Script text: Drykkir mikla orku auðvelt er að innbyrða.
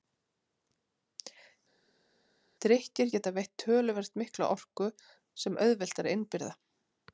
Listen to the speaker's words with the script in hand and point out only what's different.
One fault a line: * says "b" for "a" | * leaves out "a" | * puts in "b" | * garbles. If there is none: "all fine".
* puts in "geta veitt töluvert"
* puts in "sem"